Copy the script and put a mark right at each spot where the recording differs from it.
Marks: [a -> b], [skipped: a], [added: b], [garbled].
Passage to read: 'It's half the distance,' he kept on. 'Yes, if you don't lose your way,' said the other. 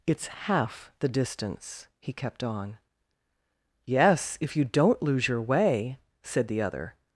'It's half the distance,' he kept on. 'Yes, if you don't lose your way,' said the other.